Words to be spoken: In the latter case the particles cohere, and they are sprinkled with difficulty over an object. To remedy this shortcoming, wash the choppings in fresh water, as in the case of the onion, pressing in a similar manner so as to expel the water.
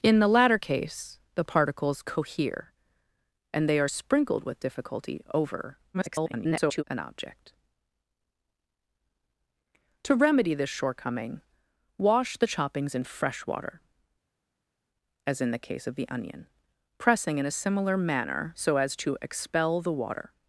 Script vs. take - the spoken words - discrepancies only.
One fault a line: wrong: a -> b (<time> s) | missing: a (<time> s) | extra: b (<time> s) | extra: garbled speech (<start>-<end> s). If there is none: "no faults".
extra: garbled speech (5.9-6.8 s)